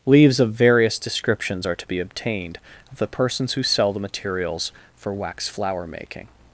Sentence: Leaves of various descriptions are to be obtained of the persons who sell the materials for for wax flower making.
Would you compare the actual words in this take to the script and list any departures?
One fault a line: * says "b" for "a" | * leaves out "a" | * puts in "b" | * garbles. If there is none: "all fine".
* leaves out "for"